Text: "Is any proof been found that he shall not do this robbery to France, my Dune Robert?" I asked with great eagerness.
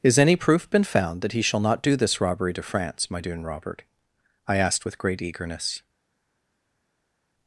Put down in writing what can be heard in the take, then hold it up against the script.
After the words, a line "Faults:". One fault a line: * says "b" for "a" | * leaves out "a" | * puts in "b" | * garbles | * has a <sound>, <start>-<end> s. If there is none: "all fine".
"Is any proof been found that he shall not do this robbery to France, my Dune Robert?" I asked with great eagerness.
Faults:
all fine